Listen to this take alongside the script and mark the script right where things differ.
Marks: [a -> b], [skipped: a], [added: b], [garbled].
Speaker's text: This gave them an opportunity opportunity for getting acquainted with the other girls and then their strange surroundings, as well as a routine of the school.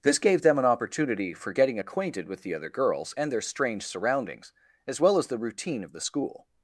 This gave them an opportunity [skipped: opportunity] for getting acquainted with the other girls and [skipped: then] their strange surroundings, as well as [a -> the] routine of the school.